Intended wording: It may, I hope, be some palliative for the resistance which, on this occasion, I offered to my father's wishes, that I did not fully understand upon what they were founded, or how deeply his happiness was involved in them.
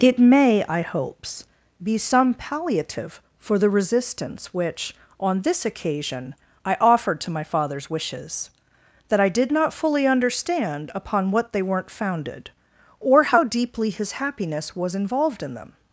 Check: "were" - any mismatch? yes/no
yes